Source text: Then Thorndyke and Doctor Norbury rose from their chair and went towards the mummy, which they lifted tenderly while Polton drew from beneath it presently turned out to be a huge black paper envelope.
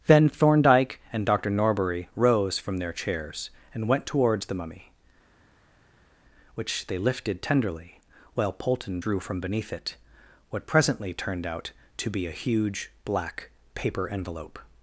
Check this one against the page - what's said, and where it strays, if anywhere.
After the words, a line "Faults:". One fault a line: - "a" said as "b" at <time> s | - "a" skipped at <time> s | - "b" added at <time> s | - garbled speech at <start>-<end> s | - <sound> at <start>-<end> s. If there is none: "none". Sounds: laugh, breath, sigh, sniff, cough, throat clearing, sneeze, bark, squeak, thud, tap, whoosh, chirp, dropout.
Then Thorndyke and Doctor Norbury rose from their chairs and went towards the mummy, which they lifted tenderly while Polton drew from beneath it what presently turned out to be a huge black paper envelope.
Faults:
- "chair" said as "chairs" at 2.9 s
- "what" added at 10.5 s